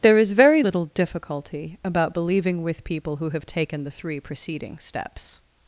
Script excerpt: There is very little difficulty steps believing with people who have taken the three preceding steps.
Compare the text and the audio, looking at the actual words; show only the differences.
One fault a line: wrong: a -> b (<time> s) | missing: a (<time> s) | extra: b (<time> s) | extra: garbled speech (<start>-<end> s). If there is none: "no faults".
wrong: steps -> about (1.8 s)